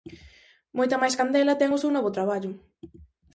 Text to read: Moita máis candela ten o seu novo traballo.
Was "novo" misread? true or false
false